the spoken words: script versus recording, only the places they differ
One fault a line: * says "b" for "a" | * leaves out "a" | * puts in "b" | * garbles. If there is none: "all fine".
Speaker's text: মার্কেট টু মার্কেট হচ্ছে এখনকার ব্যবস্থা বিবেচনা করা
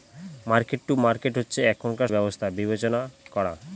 all fine